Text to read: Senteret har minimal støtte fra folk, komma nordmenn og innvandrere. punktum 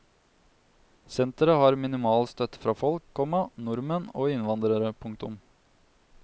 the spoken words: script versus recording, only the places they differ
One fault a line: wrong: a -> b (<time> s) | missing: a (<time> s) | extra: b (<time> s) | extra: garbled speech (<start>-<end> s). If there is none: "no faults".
no faults